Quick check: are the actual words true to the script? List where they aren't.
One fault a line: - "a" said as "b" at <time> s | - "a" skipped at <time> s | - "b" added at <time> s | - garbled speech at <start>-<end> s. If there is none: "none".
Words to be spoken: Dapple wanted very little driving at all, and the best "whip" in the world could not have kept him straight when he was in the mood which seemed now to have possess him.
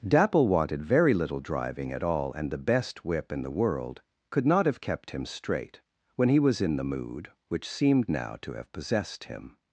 - "possess" said as "possessed" at 8.7 s